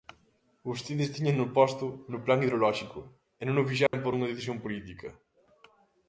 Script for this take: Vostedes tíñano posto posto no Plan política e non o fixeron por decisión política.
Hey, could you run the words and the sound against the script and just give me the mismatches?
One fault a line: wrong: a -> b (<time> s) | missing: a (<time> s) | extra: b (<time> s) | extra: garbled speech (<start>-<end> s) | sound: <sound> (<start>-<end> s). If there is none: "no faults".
missing: posto (1.9 s)
wrong: política -> hidrolóxico (2.4 s)
sound: dropout (3.9-3.9 s)
extra: unha (4.1 s)